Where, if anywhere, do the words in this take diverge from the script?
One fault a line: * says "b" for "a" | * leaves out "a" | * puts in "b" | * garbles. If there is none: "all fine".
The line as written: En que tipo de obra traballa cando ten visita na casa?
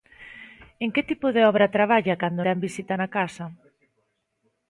all fine